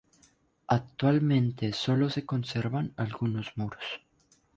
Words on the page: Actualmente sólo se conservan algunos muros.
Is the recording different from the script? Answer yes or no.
no